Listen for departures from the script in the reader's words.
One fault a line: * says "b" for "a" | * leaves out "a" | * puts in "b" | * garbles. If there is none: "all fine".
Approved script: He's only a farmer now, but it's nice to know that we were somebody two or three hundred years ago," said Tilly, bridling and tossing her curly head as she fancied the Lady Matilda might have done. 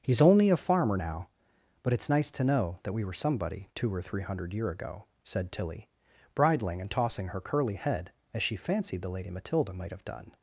* says "year" for "years"